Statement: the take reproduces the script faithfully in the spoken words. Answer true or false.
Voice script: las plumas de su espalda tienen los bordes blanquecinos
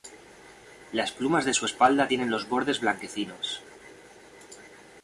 true